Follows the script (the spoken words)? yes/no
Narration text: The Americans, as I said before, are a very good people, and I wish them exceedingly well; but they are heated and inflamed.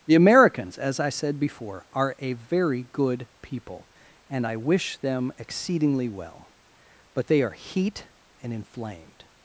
no